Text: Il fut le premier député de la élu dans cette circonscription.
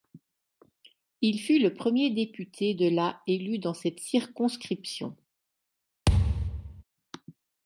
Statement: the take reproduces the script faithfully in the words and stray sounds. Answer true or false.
false